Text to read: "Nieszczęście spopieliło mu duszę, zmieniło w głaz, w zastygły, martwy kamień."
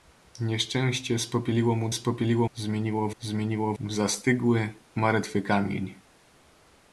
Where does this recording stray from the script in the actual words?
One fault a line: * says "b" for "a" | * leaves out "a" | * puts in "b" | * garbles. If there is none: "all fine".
* says "spopieliło" for "duszę"
* says "zmieniło" for "głaz"